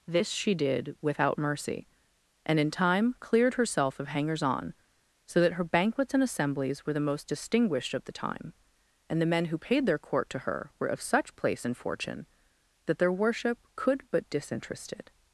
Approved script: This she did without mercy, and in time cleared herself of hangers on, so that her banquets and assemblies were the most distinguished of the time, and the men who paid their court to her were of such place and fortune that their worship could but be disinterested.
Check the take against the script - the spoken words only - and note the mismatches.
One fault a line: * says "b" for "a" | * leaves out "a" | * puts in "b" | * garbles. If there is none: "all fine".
* leaves out "be"